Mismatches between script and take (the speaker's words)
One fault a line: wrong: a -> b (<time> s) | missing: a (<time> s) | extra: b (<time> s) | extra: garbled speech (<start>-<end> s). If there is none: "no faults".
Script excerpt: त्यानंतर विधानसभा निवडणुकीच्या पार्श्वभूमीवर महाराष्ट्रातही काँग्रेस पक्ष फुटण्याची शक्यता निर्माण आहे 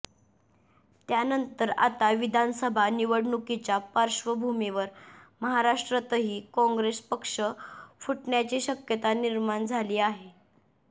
extra: आता (1.8 s)
extra: झाली (9.7 s)